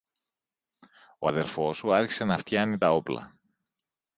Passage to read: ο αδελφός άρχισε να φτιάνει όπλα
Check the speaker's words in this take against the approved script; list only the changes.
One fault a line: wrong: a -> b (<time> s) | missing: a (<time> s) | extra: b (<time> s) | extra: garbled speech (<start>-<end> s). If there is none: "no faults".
extra: σου (1.8 s)
extra: τα (2.8 s)